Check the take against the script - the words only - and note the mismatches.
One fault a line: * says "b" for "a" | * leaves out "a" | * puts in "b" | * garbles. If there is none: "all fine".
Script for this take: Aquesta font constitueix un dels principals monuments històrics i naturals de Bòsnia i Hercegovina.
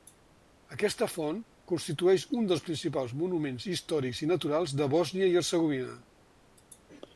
all fine